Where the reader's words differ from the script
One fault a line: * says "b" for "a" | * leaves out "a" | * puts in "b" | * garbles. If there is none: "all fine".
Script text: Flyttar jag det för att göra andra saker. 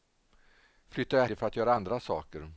all fine